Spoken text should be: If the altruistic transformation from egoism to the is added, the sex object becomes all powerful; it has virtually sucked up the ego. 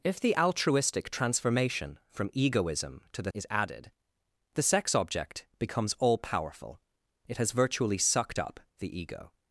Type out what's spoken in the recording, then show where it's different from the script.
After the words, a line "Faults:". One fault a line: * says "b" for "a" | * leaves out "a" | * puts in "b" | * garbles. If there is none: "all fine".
If the altruistic transformation from egoism to the is added, the sex object becomes all powerful; it has virtually sucked up the ego.
Faults:
all fine